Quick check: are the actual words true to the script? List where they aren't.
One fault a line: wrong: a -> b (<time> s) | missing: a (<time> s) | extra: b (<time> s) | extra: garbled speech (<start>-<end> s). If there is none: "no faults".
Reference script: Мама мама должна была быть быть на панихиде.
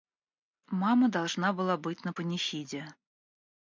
missing: мама (1.1 s)
missing: быть (2.0 s)